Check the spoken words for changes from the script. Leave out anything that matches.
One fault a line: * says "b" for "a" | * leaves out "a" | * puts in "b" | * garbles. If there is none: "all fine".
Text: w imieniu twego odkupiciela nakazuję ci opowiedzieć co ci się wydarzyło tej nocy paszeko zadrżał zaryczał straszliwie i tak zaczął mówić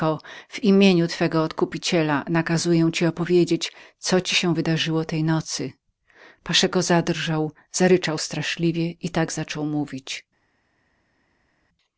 all fine